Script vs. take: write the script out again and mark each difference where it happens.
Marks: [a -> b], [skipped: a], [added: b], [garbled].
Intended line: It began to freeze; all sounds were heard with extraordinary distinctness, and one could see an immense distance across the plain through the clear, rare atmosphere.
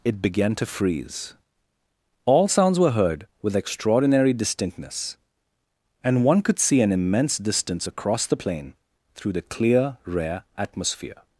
It began to freeze; all sounds were heard with extraordinary distinctness, and one could see an immense distance across the plain through the clear, rare atmosphere.